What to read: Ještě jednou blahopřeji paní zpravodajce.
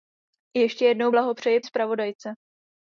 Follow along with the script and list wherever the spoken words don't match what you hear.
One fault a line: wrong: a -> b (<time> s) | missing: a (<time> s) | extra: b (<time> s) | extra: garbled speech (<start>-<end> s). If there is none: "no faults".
missing: paní (1.6 s)